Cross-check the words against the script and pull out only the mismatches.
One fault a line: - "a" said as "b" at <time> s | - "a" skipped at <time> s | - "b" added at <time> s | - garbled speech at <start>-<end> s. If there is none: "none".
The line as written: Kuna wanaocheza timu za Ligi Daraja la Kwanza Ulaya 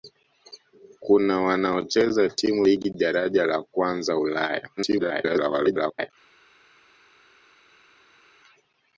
- "za" skipped at 2.7 s
- garbled speech at 4.8-6.1 s